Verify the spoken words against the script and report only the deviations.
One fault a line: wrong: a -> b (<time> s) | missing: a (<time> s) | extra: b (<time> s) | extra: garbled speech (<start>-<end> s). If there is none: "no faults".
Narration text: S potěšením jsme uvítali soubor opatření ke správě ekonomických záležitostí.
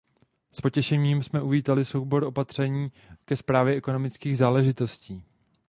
no faults